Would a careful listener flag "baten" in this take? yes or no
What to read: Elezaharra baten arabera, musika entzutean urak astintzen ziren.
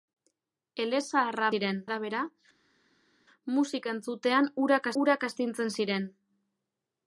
yes